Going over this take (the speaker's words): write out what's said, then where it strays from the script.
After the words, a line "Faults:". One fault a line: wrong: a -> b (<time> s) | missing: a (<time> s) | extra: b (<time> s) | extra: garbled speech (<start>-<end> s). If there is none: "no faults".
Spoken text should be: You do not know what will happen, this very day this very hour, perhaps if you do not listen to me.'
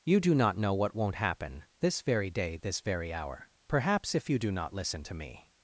You do not know what won't happen, this very day this very hour, perhaps if you do not listen to me.'
Faults:
wrong: will -> won't (0.9 s)